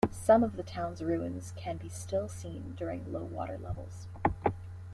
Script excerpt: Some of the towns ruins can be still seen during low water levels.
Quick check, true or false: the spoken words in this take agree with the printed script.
true